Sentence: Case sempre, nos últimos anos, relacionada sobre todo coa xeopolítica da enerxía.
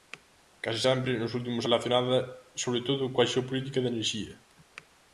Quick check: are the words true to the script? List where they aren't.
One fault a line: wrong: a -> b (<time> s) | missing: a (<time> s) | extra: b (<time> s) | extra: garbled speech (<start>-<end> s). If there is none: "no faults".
missing: anos (1.6 s)